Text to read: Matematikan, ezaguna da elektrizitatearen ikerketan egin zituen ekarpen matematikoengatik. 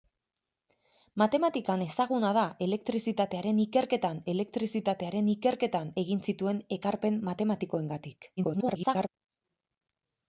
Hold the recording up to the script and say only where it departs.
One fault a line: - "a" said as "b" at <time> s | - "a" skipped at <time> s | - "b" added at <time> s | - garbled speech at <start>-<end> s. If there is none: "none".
- "elektrizitatearen ikerketan" added at 4.3 s
- garbled speech at 8.4-9.1 s